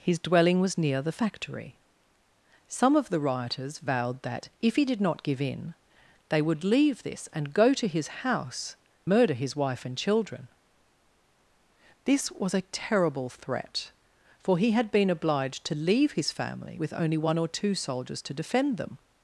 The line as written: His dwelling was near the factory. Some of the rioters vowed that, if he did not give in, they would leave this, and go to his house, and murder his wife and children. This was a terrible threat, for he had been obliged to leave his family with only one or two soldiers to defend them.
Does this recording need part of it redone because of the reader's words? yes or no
yes